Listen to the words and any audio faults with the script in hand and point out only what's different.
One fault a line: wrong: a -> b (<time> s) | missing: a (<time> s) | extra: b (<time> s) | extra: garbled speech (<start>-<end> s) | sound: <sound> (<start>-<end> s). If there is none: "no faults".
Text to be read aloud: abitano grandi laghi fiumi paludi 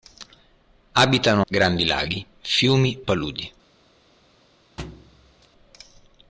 sound: thud (4.8-5.5 s)